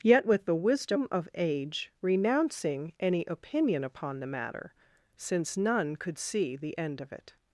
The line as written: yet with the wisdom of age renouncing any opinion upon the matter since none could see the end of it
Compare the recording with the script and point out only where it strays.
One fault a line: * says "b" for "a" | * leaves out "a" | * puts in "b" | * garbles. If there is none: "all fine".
all fine